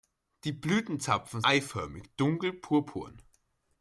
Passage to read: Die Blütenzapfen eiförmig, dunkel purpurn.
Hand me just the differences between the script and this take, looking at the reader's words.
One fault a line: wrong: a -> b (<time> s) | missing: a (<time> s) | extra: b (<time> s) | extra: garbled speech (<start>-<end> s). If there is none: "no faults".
no faults